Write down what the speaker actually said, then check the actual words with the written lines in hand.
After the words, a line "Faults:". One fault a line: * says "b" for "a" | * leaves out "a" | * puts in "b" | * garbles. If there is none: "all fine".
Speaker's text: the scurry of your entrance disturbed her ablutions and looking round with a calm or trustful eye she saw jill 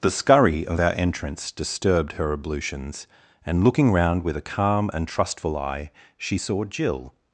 the scurry of our entrance disturbed her ablutions and looking round with a calm and trustful eye she saw jill
Faults:
* says "our" for "your"
* says "and" for "or"